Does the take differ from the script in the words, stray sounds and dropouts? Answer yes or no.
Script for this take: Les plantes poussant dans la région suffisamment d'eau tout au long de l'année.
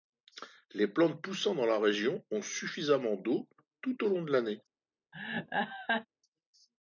yes